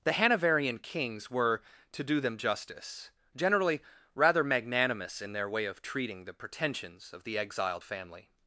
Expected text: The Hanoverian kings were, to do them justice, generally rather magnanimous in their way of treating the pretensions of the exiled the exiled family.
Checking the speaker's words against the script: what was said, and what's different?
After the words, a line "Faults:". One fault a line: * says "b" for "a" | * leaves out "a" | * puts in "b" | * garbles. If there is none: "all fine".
The Hanoverian kings were, to do them justice, generally rather magnanimous in their way of treating the pretensions of the exiled family.
Faults:
* leaves out "the exiled"